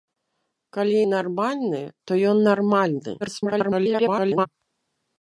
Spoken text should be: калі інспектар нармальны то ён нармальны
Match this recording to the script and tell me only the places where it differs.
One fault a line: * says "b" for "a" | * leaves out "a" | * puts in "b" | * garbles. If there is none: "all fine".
* leaves out "інспектар"
* garbles